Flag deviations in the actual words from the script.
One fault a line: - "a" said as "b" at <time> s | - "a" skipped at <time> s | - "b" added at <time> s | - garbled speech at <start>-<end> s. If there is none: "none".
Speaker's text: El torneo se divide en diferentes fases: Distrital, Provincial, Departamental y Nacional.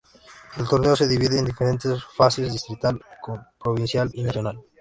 - "Departamental" skipped at 4.1 s